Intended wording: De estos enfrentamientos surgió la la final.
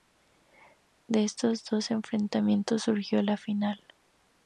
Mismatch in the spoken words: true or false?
true